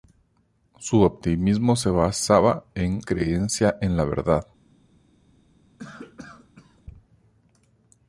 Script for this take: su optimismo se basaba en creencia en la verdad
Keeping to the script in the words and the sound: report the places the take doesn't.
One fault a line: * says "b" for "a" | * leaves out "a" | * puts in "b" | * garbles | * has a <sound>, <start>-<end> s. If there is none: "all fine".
* has a cough, 5.8-6.8 s